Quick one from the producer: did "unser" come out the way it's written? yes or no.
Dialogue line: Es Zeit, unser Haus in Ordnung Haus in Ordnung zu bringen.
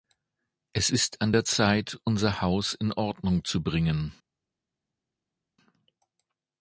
no